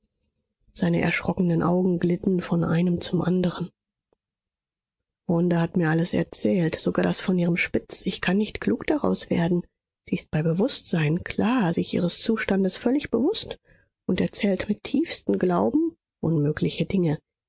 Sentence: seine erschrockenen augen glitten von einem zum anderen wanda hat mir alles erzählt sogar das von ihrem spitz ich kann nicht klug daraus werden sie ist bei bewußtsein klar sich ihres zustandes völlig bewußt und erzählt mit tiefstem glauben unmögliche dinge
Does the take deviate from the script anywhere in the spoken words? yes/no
no